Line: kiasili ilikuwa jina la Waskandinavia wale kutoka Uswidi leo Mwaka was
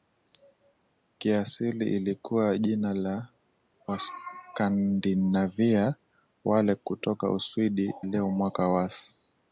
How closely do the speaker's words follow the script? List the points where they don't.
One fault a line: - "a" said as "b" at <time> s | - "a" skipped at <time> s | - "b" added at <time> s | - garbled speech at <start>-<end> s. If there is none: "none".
none